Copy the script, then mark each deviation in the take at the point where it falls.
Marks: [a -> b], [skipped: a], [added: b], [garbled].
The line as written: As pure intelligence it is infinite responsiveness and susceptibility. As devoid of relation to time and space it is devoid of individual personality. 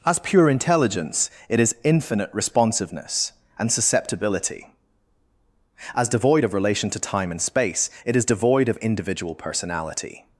As pure intelligence it is infinite responsiveness and susceptibility. As devoid of relation to time and space it is devoid of individual personality.